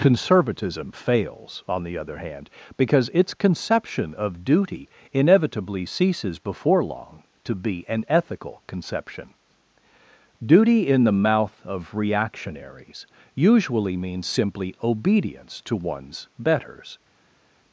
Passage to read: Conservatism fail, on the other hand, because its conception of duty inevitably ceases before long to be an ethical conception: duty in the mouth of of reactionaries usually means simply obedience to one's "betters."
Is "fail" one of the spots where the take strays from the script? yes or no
yes